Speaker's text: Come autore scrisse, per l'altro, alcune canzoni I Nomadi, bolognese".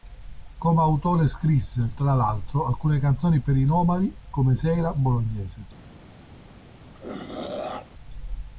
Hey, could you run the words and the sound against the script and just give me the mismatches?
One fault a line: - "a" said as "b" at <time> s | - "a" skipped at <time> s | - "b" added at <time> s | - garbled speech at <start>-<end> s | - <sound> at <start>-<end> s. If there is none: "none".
- "per" said as "tra" at 2.0 s
- "per" added at 3.4 s
- "come Sera" added at 4.3 s
- throat clearing at 6.9-7.9 s